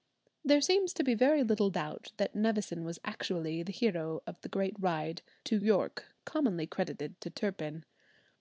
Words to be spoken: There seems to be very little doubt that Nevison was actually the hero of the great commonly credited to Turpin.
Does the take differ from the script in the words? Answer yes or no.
yes